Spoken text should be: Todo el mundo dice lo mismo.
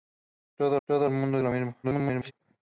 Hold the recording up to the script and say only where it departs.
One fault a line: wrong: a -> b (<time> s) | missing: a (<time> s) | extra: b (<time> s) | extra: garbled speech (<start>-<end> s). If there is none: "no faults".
extra: todo (0.9 s)
missing: dice (1.4 s)
extra: garbled speech (1.8-2.3 s)